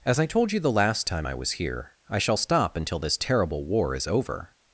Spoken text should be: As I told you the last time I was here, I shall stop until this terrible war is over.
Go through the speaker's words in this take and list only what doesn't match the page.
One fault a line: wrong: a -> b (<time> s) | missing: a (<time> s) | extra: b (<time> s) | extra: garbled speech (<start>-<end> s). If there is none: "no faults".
no faults